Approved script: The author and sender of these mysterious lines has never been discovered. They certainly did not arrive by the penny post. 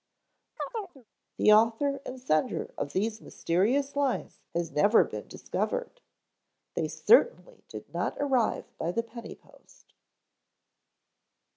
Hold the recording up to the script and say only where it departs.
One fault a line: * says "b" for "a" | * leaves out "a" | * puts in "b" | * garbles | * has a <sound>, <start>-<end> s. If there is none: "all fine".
* has a chirp, 0.6-1.1 s